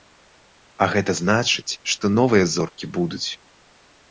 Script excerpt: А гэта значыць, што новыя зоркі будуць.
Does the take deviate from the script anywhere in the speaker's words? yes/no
no